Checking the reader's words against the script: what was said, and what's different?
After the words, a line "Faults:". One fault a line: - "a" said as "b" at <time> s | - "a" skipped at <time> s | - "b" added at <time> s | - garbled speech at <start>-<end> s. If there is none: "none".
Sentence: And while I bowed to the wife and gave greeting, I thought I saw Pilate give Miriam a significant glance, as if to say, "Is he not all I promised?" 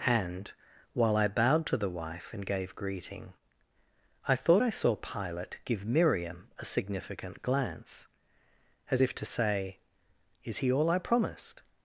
And while I bowed to the wife and gave greeting, I thought I saw Pilate give Miriam a significant glance, as if to say, "Is he all I promised?"
Faults:
- "not" skipped at 10.7 s